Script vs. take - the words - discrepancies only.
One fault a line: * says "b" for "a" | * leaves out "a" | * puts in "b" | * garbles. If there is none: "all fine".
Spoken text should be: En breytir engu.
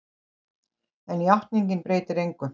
* puts in "játningin"